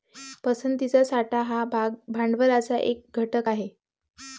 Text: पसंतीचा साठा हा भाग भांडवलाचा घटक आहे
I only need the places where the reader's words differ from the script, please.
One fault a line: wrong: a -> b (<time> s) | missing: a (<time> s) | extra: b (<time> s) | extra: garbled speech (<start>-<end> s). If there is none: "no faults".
extra: एक (2.8 s)